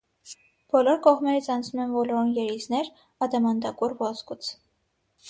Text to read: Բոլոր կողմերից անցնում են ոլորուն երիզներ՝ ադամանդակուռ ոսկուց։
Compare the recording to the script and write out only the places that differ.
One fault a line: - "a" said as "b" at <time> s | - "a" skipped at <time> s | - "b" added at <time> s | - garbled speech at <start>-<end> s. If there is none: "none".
none